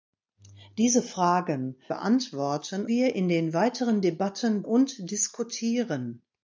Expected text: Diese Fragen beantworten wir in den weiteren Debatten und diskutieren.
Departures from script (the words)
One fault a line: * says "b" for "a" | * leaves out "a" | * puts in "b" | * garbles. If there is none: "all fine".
all fine